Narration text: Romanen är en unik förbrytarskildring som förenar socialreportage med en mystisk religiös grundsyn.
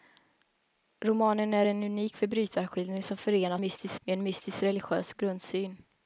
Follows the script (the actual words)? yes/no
no